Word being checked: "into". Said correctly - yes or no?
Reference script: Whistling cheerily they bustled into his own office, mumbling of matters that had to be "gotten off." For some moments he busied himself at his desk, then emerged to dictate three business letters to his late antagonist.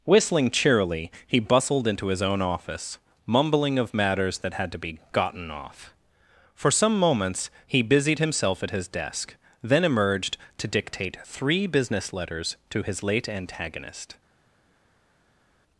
yes